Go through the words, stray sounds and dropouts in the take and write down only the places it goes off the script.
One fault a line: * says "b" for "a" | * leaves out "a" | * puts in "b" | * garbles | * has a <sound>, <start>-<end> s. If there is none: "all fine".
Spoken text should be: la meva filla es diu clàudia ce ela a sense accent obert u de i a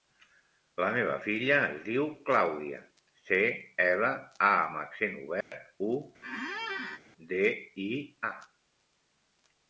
* says "amb" for "sense"
* has a dropout, 5.4-5.5 s
* has a squeak, 6.2-7.0 s